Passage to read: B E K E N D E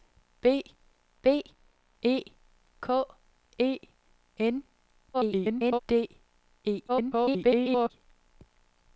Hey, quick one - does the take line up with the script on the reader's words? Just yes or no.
no